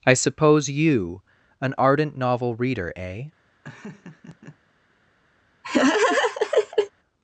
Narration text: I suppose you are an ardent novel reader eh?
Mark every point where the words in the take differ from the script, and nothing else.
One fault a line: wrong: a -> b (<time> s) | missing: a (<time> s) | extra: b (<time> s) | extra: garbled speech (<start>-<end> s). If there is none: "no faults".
missing: are (1.2 s)